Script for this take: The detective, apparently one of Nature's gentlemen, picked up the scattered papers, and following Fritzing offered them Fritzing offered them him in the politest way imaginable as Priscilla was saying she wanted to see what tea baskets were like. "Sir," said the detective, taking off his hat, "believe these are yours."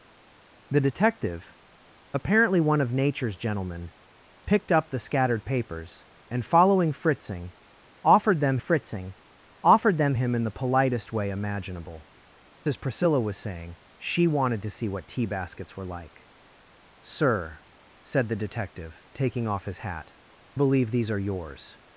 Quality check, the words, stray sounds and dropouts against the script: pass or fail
pass